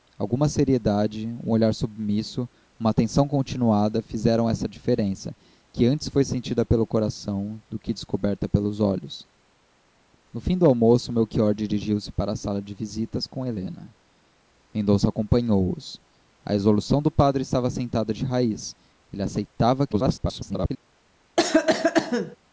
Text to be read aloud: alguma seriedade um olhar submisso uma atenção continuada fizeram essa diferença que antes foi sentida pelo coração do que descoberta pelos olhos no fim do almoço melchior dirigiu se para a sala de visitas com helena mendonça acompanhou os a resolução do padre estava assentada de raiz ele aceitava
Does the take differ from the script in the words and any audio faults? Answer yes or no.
yes